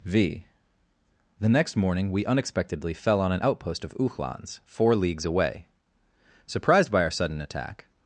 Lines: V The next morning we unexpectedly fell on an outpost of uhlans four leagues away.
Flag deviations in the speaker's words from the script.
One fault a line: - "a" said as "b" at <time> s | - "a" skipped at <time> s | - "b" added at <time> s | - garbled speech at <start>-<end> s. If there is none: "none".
- "Surprised by our sudden attack" added at 6.4 s